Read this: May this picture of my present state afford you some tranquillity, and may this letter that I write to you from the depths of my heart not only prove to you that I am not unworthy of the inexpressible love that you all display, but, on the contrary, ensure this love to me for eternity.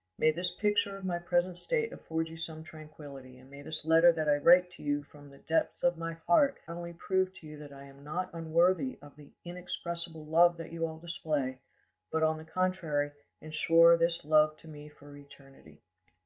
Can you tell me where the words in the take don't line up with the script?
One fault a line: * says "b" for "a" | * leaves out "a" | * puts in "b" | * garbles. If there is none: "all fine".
* leaves out "not"